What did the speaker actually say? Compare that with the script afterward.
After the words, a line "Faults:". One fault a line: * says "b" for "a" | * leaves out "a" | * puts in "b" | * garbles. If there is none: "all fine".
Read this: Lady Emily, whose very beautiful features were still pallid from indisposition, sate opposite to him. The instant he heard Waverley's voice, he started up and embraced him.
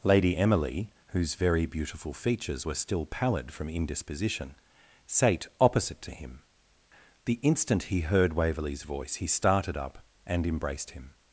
Lady Emily, whose very beautiful features were still pallid from indisposition, sate opposite to him. The instant he heard Waverley's voice, he started up and embraced him.
Faults:
all fine